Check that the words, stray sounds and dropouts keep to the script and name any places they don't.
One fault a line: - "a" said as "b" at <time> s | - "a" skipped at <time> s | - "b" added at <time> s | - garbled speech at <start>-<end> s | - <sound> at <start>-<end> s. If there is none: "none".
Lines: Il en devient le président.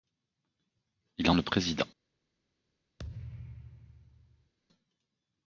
- "devient" skipped at 1.4 s
- thud at 3.0-4.5 s